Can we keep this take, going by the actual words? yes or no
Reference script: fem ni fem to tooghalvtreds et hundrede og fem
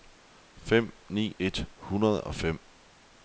no